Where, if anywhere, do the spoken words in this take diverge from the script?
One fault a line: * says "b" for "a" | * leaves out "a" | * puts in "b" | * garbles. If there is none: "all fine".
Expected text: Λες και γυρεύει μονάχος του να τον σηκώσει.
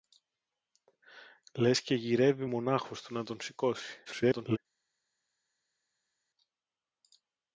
* garbles